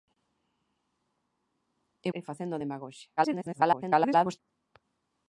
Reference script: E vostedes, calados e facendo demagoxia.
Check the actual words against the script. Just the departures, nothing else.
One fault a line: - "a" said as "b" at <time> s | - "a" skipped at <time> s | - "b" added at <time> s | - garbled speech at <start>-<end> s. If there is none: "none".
- "vostedes calados" skipped at 2.1 s
- garbled speech at 3.2-4.4 s